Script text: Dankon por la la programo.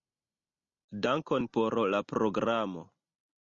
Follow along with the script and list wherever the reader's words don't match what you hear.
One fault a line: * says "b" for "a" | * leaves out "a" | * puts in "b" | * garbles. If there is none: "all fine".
* leaves out "la"